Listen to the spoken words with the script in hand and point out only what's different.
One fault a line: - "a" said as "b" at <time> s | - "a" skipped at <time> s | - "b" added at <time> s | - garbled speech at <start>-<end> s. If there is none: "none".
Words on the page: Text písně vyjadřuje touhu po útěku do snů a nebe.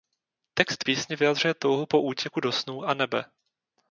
none